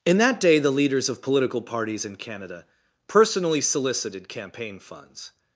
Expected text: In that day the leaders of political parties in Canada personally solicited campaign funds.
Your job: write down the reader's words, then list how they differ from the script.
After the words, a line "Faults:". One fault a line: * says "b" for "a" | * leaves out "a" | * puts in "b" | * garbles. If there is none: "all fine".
In that day the leaders of political parties in Canada personally solicited campaign funds.
Faults:
all fine